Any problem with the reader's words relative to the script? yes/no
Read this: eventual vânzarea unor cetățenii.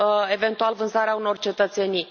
no